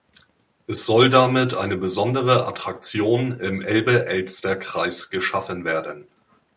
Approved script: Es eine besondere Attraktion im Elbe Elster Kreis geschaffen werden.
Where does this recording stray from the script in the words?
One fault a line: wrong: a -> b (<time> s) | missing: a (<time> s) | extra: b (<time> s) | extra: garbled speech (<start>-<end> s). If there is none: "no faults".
extra: soll damit (0.9 s)